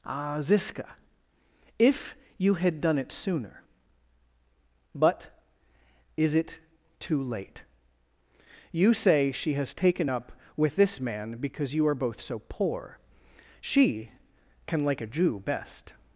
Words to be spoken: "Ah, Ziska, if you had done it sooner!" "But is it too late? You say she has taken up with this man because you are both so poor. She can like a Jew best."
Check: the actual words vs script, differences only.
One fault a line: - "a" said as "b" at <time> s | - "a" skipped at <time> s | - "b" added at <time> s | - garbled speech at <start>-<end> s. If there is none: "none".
none